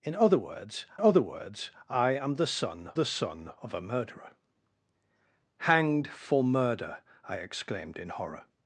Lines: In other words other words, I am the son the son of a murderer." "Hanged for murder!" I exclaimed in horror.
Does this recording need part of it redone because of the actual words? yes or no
no